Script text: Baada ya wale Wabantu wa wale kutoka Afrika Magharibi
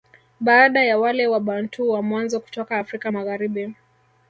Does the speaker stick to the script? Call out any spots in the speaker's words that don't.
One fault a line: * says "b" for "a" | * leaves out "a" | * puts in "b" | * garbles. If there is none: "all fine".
* says "mwanzo" for "wale"